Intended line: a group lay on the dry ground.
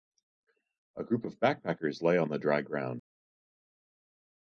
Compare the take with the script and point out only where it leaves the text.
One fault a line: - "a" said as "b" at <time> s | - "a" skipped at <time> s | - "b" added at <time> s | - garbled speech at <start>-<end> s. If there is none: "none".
- "of backpackers" added at 1.2 s